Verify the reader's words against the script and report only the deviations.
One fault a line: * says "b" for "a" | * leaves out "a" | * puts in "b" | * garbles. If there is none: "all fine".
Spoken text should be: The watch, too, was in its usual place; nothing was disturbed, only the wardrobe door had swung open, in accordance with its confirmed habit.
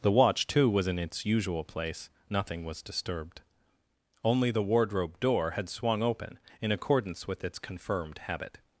all fine